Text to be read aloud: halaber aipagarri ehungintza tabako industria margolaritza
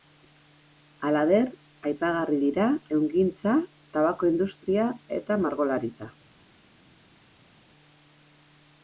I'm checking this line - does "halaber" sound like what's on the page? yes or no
yes